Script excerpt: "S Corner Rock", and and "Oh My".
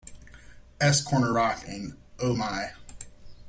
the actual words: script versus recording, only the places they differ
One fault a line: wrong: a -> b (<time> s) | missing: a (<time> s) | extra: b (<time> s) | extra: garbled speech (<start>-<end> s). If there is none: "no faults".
missing: and (2.0 s)